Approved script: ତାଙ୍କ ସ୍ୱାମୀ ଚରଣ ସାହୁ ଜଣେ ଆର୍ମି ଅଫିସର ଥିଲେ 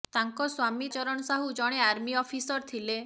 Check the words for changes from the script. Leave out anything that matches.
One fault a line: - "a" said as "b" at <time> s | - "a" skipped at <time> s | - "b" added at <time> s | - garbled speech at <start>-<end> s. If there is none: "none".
none